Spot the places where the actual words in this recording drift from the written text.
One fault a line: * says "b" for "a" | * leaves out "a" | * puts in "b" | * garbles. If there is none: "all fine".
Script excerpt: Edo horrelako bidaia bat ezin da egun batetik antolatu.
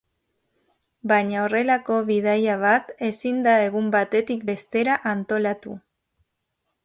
* says "Baina" for "Edo"
* puts in "bestera"